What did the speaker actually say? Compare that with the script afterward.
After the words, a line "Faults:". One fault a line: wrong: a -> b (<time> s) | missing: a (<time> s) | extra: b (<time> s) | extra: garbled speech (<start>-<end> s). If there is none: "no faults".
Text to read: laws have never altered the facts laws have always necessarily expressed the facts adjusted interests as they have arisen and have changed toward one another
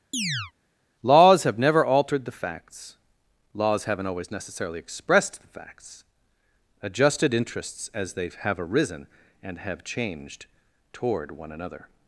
laws have never altered the facts laws haven't always necessarily expressed the facts adjusted interests as they have arisen and have changed toward one another
Faults:
wrong: have -> haven't (3.8 s)